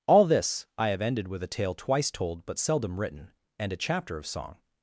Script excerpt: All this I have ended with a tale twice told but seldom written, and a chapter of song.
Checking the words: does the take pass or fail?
pass